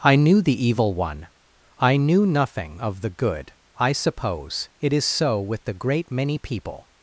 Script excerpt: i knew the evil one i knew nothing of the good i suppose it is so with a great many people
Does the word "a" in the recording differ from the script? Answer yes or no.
yes